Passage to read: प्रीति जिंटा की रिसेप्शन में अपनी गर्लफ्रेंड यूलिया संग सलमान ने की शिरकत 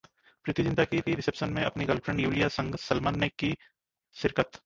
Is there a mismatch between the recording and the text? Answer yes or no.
yes